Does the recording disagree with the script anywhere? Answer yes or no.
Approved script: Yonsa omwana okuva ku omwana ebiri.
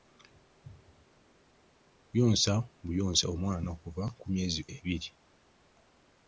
yes